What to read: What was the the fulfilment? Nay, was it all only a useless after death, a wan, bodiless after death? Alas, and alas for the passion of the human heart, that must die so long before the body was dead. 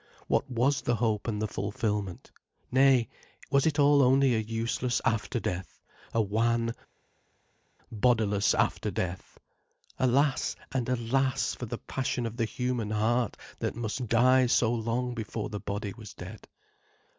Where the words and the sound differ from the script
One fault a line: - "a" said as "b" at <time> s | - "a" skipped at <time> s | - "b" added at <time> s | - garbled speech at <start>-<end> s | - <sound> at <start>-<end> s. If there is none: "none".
- "hope and" added at 0.9 s